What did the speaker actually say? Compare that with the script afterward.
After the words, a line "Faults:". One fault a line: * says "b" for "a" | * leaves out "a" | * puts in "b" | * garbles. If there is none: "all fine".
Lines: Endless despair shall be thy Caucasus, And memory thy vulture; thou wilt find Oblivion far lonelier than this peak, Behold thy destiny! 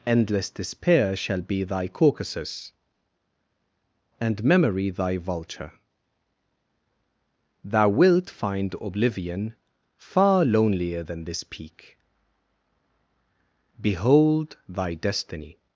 Endless despair shall be thy Caucasus, And memory thy vulture; thou wilt find Oblivion far lonelier than this peak, Behold thy destiny!
Faults:
all fine